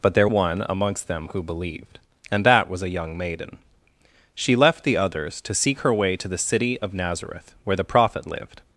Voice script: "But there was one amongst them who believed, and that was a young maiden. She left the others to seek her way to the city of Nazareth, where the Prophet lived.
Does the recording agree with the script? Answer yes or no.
no